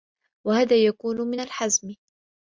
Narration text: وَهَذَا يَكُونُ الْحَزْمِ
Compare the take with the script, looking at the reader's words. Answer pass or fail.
fail